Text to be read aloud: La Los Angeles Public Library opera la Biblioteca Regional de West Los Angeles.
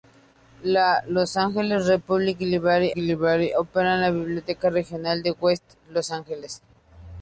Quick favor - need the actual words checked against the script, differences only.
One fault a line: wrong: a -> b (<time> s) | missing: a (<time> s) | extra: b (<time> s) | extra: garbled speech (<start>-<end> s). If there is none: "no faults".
extra: Library (2.9 s)